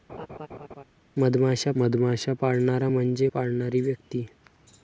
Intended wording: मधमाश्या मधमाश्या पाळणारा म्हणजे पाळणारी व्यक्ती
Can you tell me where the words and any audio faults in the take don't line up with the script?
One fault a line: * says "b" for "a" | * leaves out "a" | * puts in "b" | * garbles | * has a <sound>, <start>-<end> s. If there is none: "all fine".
* has a laugh, 0.1-0.8 s